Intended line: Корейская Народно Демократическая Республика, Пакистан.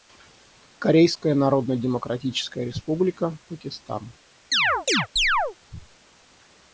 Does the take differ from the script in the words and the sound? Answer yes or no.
yes